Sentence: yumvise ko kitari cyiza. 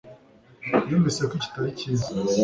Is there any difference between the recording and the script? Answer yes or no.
no